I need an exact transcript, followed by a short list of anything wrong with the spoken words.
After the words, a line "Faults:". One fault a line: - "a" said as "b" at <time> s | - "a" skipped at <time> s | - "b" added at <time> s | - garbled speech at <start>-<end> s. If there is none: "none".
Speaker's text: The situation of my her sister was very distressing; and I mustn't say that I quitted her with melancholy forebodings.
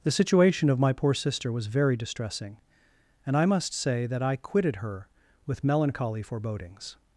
The situation of my poor sister was very distressing; and I must say that I quitted her with melancholy forebodings.
Faults:
- "her" said as "poor" at 0.9 s
- "mustn't" said as "must" at 3.4 s